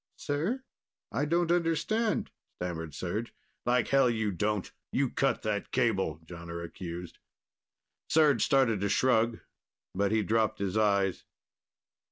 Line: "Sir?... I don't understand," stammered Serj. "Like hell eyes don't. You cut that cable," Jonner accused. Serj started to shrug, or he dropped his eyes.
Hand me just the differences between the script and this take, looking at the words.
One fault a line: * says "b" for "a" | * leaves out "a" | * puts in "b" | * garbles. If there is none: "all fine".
* says "you" for "eyes"
* says "but" for "or"